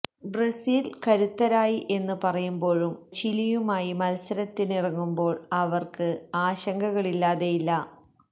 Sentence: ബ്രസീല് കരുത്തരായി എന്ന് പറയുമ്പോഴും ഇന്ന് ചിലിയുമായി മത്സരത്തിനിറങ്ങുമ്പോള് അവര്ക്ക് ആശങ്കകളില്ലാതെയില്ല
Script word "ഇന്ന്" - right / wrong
wrong